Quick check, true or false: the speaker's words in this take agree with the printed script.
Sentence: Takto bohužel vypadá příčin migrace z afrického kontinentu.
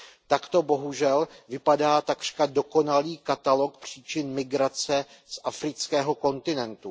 false